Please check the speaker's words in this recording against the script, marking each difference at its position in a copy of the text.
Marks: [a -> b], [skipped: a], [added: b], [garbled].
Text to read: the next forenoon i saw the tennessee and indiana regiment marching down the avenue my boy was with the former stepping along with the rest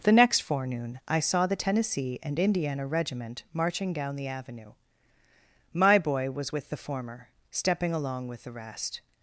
the next forenoon i saw the tennessee and indiana regiment marching down the avenue my boy was with the former stepping along with the rest